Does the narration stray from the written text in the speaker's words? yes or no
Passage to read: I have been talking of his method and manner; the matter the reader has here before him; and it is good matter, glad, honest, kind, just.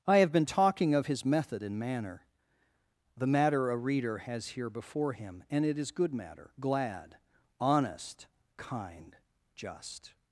yes